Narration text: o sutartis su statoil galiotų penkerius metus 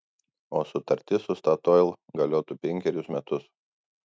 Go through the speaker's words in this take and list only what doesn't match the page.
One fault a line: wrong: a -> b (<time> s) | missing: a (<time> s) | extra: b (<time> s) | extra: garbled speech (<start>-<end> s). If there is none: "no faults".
no faults